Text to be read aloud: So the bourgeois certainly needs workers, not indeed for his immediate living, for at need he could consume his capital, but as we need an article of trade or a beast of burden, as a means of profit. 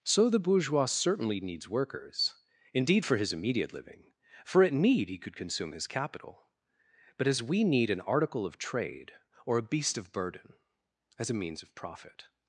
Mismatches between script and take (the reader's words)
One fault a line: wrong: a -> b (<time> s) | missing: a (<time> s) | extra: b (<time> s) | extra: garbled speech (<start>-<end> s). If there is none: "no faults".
missing: not (2.4 s)